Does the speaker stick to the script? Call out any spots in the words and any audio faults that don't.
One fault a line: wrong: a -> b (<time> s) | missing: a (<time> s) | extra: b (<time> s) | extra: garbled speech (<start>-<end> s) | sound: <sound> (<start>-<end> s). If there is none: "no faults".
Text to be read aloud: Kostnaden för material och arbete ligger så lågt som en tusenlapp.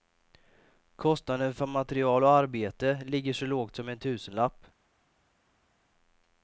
no faults